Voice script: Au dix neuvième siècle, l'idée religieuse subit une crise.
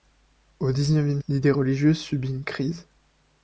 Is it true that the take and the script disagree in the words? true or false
true